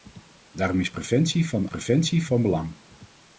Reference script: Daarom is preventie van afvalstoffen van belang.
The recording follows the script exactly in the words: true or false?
false